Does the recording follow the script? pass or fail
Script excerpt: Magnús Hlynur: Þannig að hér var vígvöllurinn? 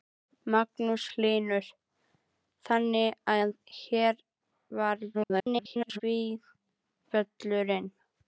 fail